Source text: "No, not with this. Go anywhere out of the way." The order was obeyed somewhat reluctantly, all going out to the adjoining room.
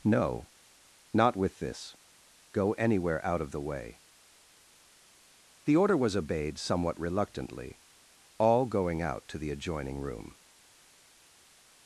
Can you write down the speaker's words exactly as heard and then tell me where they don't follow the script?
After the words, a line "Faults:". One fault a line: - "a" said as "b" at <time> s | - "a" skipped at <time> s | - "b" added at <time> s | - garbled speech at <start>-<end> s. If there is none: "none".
"No, not with this. Go anywhere out of the way." The order was obeyed somewhat reluctantly, all going out to the adjoining room.
Faults:
none